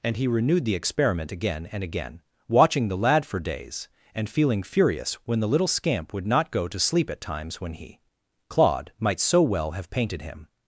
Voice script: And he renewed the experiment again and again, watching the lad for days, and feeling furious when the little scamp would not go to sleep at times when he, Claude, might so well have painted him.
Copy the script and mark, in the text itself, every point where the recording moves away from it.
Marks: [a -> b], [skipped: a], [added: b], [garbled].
And he renewed the experiment again and again, watching the lad for days, and feeling furious when the little scamp would not go to sleep at times when he, Claude, might so well have painted him.